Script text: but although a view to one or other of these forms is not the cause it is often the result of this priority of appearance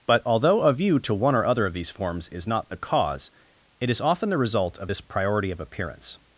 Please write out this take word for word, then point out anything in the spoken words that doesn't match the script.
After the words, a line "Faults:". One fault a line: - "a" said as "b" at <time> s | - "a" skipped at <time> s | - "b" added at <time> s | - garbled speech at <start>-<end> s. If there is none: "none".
but although a view to one or other of these forms is not the cause it is often the result of this priority of appearance
Faults:
none